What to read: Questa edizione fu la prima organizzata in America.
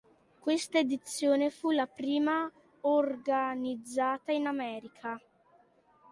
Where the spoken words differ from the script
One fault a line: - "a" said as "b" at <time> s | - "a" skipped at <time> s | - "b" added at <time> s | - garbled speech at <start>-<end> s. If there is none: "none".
none